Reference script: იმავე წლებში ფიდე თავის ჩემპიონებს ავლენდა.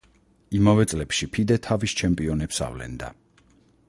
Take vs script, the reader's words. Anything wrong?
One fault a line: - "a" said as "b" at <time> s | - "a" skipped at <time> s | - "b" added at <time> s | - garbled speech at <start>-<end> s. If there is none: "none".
none